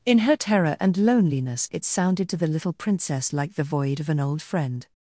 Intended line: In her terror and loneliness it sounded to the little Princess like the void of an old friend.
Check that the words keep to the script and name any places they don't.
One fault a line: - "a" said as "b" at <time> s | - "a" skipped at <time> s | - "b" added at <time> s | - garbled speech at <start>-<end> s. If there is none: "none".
none